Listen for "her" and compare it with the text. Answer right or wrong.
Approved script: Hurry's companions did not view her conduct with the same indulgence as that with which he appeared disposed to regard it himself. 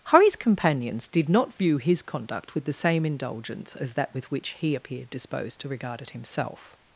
wrong